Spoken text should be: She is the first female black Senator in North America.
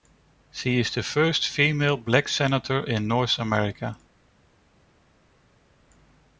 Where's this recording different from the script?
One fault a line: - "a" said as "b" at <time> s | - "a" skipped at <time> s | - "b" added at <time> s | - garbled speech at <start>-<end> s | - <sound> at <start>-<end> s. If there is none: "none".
none